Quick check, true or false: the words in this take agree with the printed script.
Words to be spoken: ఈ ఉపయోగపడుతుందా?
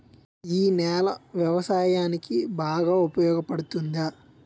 false